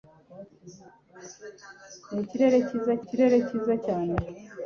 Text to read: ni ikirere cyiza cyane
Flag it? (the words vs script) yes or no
yes